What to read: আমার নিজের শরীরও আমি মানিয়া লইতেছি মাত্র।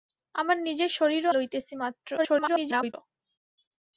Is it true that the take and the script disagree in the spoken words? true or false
true